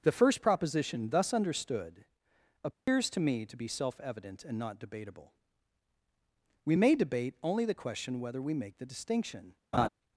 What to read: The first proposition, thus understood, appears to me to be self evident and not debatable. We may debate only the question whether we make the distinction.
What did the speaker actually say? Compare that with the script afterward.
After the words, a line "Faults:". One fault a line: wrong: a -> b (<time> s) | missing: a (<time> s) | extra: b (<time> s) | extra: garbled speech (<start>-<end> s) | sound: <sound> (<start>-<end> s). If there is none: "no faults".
The first proposition, thus understood, appears to me to be self evident and not debatable. We may debate only the question whether we make the distinction.
Faults:
sound: dropout (2.7-2.9 s)
sound: laugh (9.7-9.9 s)